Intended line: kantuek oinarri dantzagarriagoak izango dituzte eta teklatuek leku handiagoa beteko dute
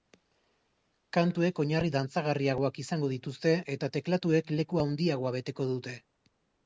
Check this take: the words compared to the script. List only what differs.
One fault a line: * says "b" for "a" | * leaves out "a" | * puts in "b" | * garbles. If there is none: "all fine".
all fine